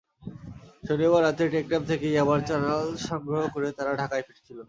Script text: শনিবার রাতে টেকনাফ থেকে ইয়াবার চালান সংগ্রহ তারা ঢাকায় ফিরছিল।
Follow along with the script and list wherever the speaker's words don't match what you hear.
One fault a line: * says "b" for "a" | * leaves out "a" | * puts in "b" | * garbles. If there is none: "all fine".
* puts in "করে"